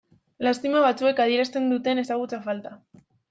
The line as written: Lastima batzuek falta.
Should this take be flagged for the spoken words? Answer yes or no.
yes